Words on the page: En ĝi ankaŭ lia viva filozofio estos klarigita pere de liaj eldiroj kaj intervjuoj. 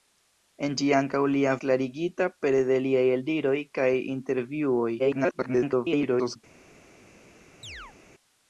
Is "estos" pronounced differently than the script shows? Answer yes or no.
yes